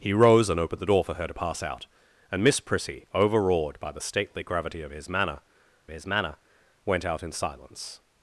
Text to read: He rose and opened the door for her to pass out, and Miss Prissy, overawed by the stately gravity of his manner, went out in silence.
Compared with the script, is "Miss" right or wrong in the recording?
right